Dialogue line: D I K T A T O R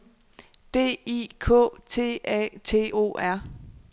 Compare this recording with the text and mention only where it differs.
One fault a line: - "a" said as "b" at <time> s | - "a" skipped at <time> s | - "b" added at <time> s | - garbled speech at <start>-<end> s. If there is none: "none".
none